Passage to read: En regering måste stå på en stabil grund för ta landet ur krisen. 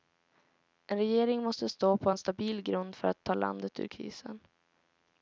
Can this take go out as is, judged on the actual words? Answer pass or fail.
fail